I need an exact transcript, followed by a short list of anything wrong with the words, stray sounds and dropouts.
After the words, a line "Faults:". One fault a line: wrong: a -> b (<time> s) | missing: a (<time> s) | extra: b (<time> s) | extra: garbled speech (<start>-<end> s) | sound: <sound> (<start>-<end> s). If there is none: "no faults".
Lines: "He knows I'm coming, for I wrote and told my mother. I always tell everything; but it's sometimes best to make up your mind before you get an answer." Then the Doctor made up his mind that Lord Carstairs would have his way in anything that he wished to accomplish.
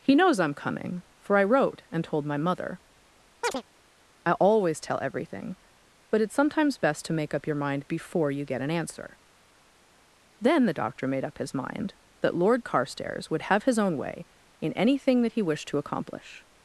"He knows I'm coming, for I wrote and told my mother. I always tell everything; but it's sometimes best to make up your mind before you get an answer." Then the Doctor made up his mind that Lord Carstairs would have his own way in anything that he wished to accomplish.
Faults:
sound: chirp (3.4-3.6 s)
extra: own (13.8 s)